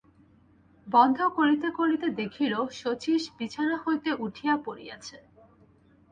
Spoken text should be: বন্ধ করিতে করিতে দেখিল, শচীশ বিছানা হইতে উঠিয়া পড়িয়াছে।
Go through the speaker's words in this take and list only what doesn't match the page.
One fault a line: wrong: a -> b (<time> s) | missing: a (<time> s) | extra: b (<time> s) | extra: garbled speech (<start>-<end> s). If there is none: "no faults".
no faults